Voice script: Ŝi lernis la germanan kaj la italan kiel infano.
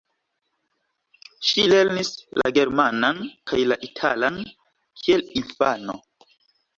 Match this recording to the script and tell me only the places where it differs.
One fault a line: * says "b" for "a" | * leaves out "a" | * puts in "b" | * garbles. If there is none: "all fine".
all fine